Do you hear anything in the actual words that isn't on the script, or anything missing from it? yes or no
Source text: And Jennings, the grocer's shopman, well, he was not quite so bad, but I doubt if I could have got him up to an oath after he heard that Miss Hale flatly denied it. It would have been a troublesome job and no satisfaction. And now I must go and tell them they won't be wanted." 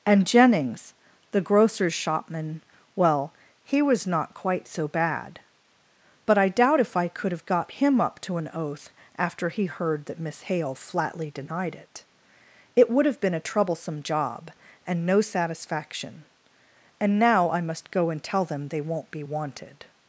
no